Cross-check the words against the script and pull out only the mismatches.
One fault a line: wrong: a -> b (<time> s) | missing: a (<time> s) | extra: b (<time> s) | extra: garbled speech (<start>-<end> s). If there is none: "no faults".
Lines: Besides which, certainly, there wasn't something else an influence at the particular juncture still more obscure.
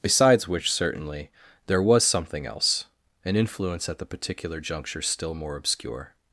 wrong: wasn't -> was (1.8 s)